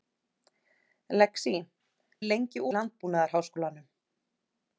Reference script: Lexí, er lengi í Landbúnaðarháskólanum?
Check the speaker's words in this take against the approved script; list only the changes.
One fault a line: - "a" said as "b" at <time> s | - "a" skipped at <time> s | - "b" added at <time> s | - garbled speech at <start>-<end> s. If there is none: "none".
none